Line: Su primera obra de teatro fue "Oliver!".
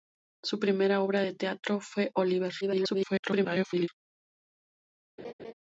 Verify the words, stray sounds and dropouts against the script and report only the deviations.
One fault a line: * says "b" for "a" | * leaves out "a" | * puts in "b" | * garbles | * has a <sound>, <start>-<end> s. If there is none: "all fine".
* garbles
* has a laugh, 5.2-5.5 s